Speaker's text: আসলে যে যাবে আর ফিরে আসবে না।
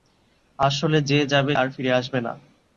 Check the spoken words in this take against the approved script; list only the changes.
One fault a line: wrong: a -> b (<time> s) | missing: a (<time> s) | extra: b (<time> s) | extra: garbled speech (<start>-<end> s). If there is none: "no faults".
no faults